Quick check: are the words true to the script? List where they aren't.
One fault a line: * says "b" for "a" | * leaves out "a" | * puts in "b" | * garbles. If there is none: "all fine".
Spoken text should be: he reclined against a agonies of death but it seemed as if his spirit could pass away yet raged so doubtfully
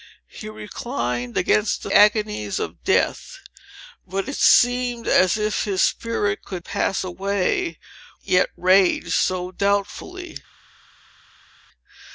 all fine